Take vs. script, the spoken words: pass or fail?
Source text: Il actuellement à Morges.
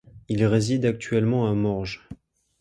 fail